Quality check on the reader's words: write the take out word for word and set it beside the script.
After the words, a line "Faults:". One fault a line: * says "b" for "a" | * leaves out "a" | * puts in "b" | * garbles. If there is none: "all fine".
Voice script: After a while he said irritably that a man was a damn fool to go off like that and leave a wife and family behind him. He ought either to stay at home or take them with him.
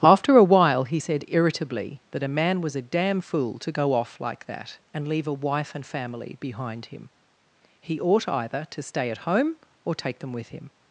After a while he said irritably that a man was a damn fool to go off like that and leave a wife and family behind him. He ought either to stay at home or take them with him.
Faults:
all fine